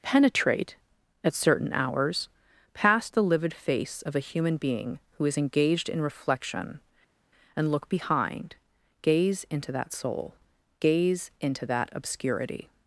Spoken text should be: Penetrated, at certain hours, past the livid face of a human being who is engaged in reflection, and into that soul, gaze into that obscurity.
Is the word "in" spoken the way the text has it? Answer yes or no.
yes